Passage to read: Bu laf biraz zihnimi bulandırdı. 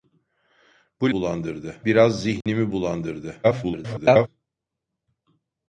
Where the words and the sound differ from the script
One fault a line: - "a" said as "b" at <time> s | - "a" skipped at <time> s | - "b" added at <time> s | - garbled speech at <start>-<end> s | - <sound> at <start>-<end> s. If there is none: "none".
- "laf" said as "bulandırdı" at 1.1 s
- dropout at 2.4-2.5 s
- garbled speech at 3.4-4.3 s